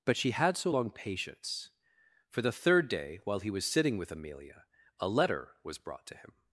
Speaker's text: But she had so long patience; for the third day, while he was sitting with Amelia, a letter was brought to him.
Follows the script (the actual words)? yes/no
yes